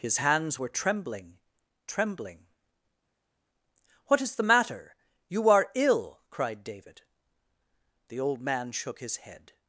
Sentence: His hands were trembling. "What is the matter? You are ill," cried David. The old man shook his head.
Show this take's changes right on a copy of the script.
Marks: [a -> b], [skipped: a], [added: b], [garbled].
His hands were trembling. [added: trembling] "What is the matter? You are ill," cried David. The old man shook his head.